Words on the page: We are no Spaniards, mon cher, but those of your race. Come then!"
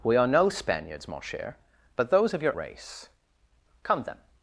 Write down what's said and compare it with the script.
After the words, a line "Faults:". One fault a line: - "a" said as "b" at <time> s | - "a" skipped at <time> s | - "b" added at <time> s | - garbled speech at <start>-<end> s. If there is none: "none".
We are no Spaniards, mon cher, but those of your race. Come then!"
Faults:
none